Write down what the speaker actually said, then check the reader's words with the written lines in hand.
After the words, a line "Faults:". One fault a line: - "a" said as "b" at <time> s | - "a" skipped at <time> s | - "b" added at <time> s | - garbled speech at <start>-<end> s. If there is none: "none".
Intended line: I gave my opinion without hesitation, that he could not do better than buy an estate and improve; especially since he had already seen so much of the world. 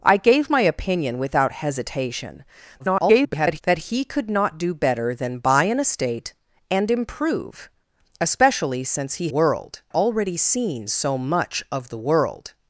I gave my opinion without hesitation, [garbled] that he could not do better than buy an estate and improve; especially since he world already seen so much of the world.
Faults:
- garbled speech at 2.8-3.6 s
- "had" said as "world" at 9.3 s